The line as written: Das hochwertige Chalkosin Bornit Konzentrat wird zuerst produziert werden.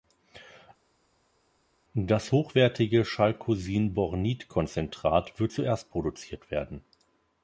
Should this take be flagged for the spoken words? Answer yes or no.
no